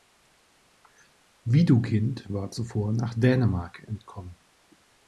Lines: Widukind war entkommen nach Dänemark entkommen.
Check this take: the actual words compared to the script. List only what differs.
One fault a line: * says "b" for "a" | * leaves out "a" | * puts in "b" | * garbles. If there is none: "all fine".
* says "zuvor" for "entkommen"